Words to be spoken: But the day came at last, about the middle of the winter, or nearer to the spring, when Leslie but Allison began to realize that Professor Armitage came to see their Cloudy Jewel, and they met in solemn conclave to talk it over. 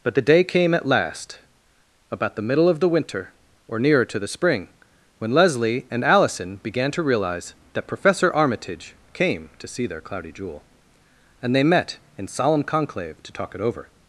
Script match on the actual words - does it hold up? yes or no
no